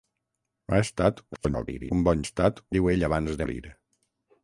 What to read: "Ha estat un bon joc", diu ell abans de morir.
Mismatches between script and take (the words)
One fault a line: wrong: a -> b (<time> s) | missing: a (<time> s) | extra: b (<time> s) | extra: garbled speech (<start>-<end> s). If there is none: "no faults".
extra: garbled speech (1.3-1.9 s)
wrong: joc -> estat (2.2 s)
missing: de (3.4 s)